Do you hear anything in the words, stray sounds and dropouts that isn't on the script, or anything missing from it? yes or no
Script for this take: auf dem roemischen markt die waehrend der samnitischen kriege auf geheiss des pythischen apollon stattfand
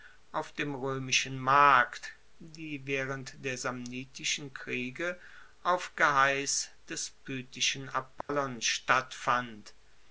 yes